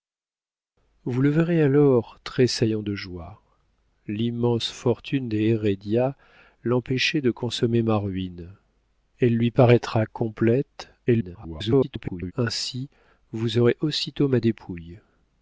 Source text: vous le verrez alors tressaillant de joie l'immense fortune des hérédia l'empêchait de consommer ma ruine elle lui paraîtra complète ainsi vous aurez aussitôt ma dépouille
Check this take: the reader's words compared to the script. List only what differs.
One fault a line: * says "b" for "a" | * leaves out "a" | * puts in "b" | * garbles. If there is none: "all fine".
* garbles